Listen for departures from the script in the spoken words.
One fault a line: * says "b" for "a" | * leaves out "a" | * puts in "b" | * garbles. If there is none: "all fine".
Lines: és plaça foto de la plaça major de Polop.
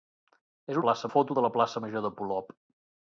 all fine